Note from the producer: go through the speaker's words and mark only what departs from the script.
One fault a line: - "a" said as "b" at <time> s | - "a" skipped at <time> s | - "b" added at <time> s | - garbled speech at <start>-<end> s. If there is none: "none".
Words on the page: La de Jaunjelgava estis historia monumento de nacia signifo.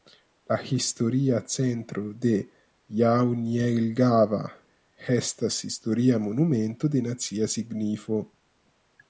- "historia centro" added at 0.8 s
- "estis" said as "estas" at 5.2 s